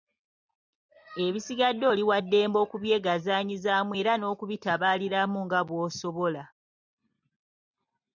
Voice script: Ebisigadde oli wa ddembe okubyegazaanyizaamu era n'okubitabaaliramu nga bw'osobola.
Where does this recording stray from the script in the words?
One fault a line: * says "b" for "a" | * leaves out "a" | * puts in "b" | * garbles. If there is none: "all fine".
all fine